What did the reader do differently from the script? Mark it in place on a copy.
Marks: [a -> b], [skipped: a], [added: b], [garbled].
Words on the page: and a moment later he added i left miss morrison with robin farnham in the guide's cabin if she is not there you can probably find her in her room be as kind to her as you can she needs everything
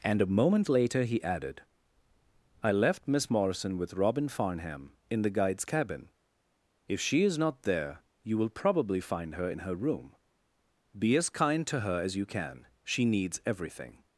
and a moment later he added i left miss morrison with robin farnham in the guide's cabin if she is not there you [can -> will] probably find her in her room be as kind to her as you can she needs everything